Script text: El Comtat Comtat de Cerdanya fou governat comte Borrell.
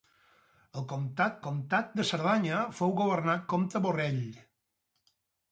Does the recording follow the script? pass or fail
pass